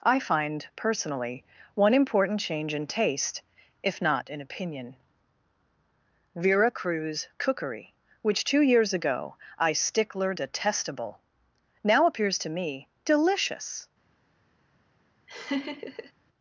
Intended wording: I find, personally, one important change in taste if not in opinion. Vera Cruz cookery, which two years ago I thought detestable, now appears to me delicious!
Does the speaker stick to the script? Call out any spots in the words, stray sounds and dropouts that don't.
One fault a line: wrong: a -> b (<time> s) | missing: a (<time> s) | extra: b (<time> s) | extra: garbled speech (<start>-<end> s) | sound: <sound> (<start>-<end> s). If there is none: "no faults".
wrong: thought -> stickler (9.7 s)
sound: laugh (15.3-16.1 s)